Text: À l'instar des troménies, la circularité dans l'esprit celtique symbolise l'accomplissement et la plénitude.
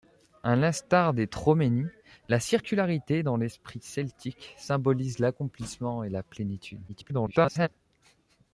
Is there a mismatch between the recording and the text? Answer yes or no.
yes